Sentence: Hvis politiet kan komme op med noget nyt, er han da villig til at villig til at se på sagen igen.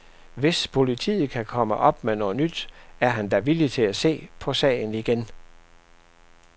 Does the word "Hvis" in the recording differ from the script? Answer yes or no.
no